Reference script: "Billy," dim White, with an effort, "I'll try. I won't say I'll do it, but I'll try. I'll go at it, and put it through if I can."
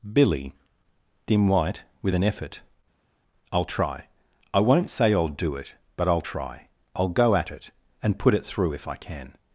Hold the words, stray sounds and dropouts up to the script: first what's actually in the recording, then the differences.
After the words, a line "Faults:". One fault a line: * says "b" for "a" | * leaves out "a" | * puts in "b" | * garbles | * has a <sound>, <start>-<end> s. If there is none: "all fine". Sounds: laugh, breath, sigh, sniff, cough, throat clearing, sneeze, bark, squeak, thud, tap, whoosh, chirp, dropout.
"Billy," dim White, with an effort, "I'll try. I won't say I'll do it, but I'll try. I'll go at it, and put it through if I can."
Faults:
all fine